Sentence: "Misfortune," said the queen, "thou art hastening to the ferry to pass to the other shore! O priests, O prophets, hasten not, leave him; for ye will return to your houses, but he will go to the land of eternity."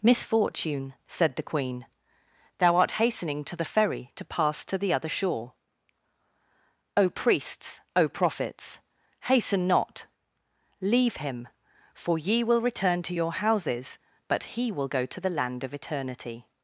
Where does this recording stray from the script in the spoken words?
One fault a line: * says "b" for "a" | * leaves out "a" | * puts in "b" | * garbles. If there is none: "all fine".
all fine